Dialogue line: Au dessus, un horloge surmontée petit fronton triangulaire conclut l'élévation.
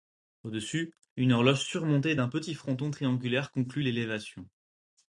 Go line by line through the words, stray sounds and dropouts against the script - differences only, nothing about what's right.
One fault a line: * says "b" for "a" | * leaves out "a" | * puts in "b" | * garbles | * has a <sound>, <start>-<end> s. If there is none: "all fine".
* says "une" for "un"
* puts in "d'un"